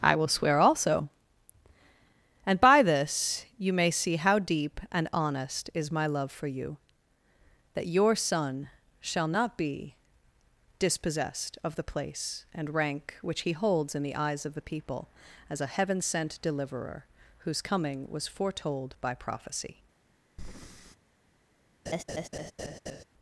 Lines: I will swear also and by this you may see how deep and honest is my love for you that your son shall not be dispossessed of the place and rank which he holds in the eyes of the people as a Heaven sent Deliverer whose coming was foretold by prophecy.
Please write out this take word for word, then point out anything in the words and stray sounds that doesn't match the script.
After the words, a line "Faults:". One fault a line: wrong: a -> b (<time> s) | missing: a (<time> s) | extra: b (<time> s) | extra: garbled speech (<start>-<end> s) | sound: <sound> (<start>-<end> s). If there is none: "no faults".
I will swear also and by this you may see how deep and honest is my love for you that your son shall not be dispossessed of the place and rank which he holds in the eyes of the people as a Heaven sent Deliverer whose coming was foretold by prophecy.
Faults:
sound: breath (20.4-21.0 s)
sound: laugh (21.9-23.0 s)